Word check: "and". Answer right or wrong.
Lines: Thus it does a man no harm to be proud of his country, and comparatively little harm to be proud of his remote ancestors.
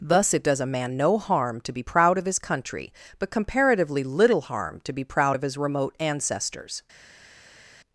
wrong